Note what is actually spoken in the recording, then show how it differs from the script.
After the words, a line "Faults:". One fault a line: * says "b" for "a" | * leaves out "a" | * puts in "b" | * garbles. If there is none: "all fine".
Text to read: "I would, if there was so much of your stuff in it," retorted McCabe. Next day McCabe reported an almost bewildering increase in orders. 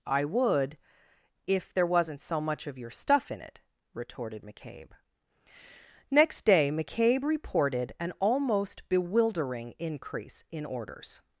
"I would, if there wasn't so much of your stuff in it," retorted McCabe. Next day McCabe reported an almost bewildering increase in orders.
Faults:
* says "wasn't" for "was"